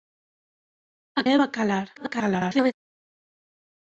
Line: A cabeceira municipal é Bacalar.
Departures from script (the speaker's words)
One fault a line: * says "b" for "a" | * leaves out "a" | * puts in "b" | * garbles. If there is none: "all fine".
* leaves out "cabeceira municipal"
* garbles